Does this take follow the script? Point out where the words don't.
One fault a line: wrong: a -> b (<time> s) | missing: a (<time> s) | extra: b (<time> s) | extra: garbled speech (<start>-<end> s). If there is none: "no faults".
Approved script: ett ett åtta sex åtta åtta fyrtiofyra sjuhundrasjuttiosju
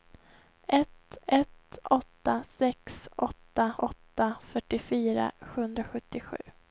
no faults